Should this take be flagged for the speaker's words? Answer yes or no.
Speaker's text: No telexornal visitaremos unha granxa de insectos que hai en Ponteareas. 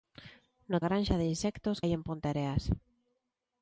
yes